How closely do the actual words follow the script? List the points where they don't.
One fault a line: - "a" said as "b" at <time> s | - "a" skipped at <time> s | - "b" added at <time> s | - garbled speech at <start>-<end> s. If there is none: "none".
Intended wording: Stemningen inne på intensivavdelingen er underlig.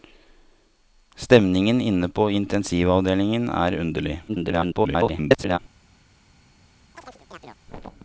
- garbled speech at 4.3-5.6 s